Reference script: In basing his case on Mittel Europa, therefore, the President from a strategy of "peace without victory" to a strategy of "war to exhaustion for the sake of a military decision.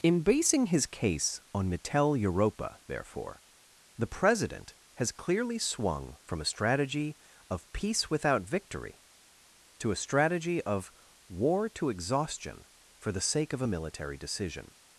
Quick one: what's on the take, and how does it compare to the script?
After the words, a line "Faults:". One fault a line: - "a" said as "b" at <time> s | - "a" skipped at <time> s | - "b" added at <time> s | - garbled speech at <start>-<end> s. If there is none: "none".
In basing his case on Mittel Europa, therefore, the President has clearly swung from a strategy of "peace without victory" to a strategy of "war to exhaustion for the sake of a military decision.
Faults:
- "has clearly swung" added at 5.0 s